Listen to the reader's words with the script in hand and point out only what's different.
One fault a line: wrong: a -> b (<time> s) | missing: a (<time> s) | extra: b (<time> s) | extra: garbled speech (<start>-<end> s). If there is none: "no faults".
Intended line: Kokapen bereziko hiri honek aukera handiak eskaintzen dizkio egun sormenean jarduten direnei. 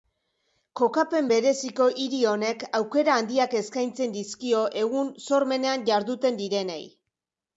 no faults